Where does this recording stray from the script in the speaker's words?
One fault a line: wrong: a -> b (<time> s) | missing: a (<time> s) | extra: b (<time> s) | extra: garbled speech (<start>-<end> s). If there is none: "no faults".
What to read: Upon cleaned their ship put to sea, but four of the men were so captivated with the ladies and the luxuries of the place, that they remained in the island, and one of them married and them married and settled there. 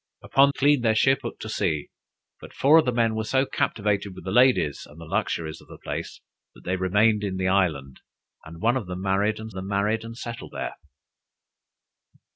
no faults